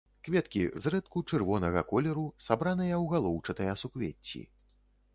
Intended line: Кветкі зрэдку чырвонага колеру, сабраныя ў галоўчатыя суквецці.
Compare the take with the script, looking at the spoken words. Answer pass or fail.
pass